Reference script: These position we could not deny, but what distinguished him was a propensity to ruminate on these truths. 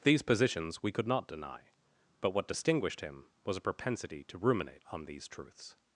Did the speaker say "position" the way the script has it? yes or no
no